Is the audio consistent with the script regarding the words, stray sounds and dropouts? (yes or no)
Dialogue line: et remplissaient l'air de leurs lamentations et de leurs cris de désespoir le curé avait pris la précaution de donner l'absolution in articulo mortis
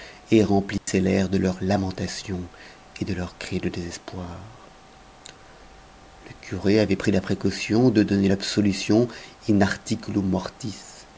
no